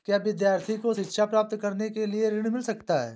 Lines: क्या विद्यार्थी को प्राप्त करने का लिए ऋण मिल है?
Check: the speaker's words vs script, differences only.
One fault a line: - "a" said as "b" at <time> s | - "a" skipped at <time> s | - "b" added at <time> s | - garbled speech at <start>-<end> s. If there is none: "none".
- "शिक्षा" added at 0.9 s
- "का" said as "के" at 1.9 s
- "सकता" added at 2.6 s